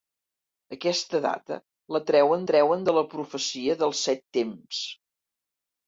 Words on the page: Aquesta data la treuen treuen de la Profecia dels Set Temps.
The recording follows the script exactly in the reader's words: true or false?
true